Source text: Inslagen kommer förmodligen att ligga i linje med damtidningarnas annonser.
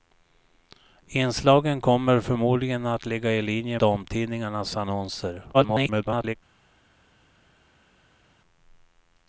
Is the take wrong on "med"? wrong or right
wrong